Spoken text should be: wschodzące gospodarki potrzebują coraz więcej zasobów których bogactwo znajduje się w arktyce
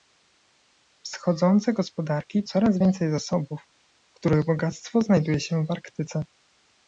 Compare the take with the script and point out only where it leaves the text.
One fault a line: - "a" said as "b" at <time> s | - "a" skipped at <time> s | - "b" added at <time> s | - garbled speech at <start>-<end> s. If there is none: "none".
- "potrzebują" skipped at 2.4 s